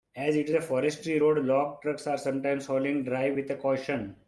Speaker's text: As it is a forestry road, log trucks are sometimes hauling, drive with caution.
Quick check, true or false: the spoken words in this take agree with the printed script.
true